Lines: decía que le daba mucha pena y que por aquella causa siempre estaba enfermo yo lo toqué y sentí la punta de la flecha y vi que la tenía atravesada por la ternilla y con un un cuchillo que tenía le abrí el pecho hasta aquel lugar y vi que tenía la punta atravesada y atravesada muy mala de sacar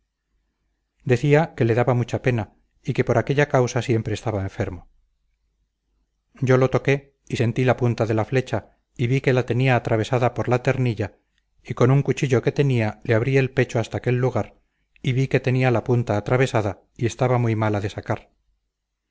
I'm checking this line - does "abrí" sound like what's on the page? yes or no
yes